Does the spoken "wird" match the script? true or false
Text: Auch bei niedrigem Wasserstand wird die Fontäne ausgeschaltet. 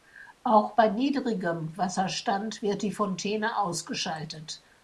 true